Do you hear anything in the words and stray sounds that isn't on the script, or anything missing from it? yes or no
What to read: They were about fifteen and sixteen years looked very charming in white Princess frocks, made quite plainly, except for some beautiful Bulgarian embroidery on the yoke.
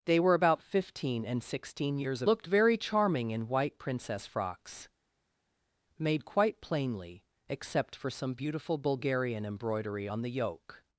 no